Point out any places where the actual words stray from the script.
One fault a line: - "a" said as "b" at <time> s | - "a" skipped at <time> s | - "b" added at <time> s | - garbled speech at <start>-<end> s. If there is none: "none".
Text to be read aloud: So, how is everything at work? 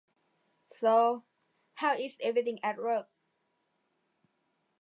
none